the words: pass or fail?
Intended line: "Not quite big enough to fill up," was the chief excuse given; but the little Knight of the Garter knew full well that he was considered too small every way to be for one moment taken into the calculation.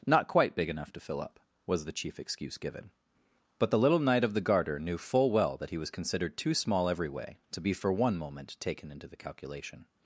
pass